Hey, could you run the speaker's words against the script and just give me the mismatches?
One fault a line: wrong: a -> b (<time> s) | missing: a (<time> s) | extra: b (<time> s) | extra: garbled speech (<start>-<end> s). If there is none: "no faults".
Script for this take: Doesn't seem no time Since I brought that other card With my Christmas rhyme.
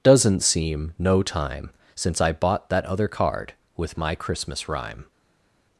wrong: brought -> bought (2.3 s)